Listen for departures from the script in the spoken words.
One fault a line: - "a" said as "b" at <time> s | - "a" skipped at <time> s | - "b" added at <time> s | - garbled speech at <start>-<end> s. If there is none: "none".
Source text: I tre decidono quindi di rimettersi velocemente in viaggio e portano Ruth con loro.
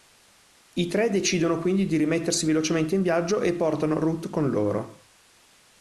none